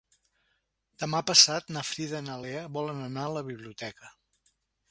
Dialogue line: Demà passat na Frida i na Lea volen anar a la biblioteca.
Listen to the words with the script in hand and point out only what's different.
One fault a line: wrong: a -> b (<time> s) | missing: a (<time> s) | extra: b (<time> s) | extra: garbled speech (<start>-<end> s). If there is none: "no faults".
no faults